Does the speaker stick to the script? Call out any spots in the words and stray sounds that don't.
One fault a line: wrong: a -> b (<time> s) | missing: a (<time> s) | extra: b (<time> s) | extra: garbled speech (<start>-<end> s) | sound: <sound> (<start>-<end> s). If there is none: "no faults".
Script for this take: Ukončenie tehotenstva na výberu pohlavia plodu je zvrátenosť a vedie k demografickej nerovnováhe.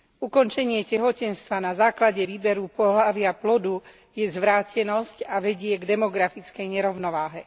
extra: základe (1.7 s)